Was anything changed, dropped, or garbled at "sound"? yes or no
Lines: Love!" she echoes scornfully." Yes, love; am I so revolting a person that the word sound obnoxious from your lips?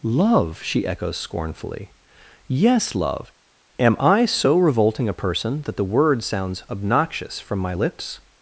yes